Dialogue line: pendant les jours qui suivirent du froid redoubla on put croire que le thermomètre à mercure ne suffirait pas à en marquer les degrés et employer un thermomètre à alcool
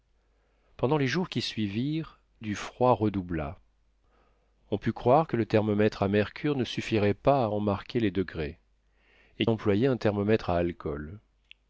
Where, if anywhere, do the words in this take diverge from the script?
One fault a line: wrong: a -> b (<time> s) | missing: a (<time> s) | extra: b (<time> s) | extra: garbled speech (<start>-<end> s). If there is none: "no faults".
no faults